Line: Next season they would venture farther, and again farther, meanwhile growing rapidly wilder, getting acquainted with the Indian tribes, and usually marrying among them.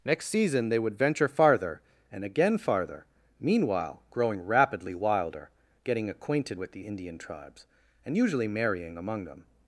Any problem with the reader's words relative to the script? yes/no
no